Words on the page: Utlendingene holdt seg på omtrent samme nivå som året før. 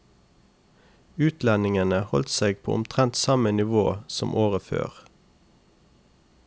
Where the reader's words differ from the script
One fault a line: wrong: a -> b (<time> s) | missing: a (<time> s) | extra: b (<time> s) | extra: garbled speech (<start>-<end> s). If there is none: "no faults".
no faults